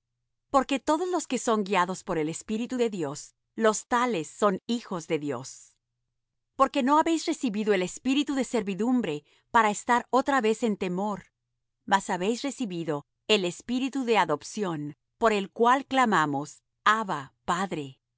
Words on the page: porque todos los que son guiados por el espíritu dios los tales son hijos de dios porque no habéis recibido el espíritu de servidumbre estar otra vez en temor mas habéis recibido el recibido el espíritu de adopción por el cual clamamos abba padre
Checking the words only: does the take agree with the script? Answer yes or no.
no